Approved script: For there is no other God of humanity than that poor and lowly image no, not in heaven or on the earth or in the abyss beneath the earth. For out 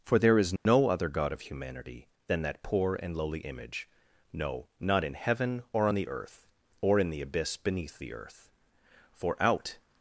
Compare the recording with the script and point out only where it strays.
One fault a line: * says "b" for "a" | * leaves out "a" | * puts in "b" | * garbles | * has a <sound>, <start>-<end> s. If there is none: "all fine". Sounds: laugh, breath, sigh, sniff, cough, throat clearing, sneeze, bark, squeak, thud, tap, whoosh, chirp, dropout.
* has a dropout, 0.6-0.7 s